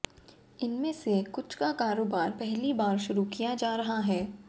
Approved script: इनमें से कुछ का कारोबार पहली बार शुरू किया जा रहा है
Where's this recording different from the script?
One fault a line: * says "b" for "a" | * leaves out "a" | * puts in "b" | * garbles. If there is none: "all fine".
all fine